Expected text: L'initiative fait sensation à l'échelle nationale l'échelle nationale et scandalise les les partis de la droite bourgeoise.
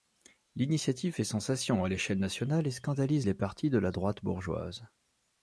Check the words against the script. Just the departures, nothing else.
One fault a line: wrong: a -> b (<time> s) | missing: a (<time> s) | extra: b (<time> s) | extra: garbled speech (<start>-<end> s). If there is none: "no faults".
missing: l'échelle nationale (2.7 s)
missing: les (3.3 s)